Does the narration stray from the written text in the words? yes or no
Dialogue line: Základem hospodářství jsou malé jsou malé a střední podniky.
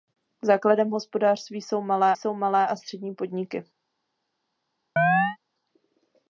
no